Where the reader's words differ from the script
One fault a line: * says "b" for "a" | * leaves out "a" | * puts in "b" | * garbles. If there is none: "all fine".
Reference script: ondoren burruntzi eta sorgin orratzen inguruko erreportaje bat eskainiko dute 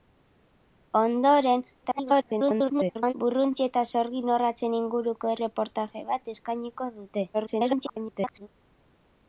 * garbles
* garbles